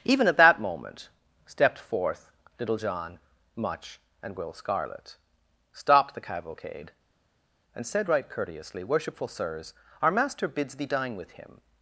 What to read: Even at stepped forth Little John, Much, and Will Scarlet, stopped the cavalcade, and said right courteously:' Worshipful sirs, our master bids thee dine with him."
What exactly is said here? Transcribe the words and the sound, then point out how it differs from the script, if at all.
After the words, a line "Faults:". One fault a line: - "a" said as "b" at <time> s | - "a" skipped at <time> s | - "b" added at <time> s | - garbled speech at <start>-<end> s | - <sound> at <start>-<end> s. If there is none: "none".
Even at that moment, stepped forth Little John, Much, and Will Scarlet, stopped the cavalcade, and said right courteously:' Worshipful sirs, our master bids thee dine with him."
Faults:
- "that moment" added at 0.4 s